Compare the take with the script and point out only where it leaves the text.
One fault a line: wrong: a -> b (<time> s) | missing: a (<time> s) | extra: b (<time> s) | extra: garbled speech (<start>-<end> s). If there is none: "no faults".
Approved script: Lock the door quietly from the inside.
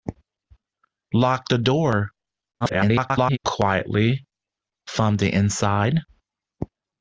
extra: garbled speech (2.6-3.4 s)